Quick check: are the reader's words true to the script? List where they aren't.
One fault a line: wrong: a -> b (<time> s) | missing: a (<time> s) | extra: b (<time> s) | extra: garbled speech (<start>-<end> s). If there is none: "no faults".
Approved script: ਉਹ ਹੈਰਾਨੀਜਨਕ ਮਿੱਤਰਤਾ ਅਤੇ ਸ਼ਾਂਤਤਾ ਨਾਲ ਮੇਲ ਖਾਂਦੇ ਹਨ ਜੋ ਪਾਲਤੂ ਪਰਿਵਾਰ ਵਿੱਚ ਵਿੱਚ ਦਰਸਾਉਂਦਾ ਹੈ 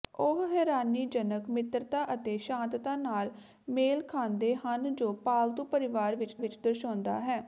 no faults